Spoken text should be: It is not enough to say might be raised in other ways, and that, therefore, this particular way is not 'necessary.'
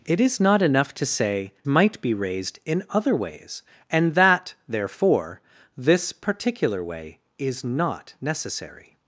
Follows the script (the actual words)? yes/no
yes